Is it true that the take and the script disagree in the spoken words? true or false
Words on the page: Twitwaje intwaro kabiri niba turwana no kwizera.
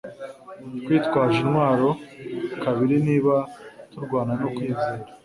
false